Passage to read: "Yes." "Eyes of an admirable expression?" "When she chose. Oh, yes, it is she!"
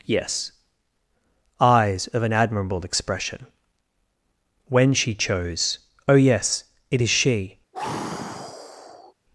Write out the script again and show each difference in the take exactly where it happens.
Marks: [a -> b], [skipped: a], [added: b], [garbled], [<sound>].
"Yes." "Eyes of an admirable expression?" "When she chose. Oh, yes, it is she!" [sigh]